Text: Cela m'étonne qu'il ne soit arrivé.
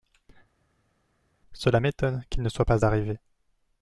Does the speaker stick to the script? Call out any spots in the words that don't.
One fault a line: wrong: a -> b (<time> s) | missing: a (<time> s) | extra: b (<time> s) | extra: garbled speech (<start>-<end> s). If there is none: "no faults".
extra: pas (2.6 s)